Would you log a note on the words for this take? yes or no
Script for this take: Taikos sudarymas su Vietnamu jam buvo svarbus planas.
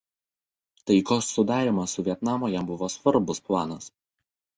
no